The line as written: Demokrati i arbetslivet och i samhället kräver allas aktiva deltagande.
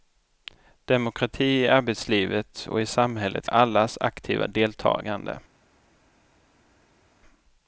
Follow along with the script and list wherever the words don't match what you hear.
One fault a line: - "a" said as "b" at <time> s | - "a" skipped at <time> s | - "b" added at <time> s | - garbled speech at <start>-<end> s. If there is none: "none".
- "kräver" skipped at 3.5 s